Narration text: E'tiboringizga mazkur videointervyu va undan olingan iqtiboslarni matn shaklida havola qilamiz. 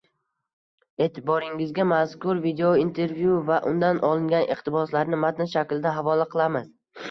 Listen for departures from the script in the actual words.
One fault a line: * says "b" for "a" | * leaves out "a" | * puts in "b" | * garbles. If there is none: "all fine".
all fine